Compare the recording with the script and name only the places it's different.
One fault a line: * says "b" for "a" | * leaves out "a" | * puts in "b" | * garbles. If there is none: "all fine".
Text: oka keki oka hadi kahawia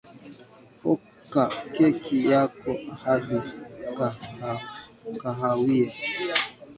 * says "yako" for "oka"